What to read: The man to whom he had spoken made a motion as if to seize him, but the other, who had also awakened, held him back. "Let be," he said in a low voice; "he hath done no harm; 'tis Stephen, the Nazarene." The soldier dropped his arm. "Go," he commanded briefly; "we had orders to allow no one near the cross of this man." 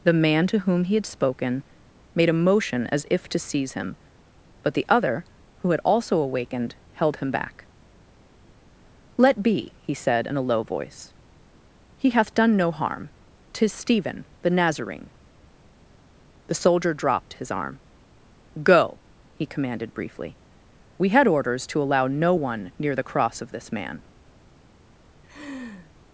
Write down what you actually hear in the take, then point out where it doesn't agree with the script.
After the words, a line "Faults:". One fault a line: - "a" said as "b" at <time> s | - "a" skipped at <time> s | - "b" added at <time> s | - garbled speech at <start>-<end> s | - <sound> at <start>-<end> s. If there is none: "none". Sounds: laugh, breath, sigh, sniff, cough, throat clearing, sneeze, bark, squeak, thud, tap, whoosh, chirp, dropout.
The man to whom he had spoken made a motion as if to seize him, but the other, who had also awakened, held him back. "Let be," he said in a low voice; "he hath done no harm; 'tis Stephen, the Nazarene." The soldier dropped his arm. "Go," he commanded briefly; "we had orders to allow no one near the cross of this man."
Faults:
- laugh at 25.2-25.9 s